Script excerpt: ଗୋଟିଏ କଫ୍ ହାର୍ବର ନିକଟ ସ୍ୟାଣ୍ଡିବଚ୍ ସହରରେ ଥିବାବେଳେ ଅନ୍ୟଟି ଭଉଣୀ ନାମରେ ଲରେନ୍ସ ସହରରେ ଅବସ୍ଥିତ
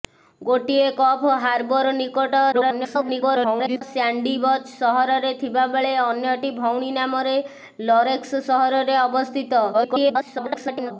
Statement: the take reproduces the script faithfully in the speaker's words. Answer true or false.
false